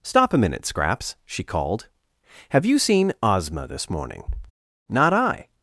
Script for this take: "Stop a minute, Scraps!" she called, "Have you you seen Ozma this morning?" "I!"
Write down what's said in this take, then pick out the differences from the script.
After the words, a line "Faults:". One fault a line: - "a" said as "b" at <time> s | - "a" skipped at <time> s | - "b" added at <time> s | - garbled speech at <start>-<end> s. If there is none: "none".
"Stop a minute, Scraps!" she called, "Have you seen Ozma this morning?" "Not I!"
Faults:
- "you" skipped at 2.8 s
- "Not" added at 4.9 s